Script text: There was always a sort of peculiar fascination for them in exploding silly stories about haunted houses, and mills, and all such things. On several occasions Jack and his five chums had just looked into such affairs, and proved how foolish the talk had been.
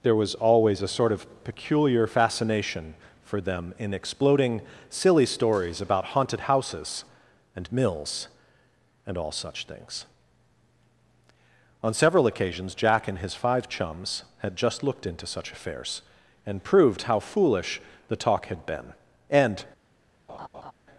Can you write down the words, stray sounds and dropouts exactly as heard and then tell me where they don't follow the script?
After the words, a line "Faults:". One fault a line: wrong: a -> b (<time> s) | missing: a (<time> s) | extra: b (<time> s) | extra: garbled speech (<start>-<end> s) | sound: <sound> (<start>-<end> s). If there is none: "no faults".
There was always a sort of peculiar fascination for them in exploding silly stories about haunted houses, and mills, and all such things. On several occasions Jack and his five chums had just looked into such affairs, and proved how foolish the talk had been. And
Faults:
extra: And (19.3 s)
sound: laugh (20.3-20.7 s)